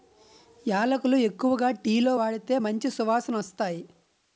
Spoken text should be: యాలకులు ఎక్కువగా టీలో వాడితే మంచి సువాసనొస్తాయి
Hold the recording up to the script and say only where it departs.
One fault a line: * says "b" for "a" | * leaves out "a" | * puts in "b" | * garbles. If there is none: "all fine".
all fine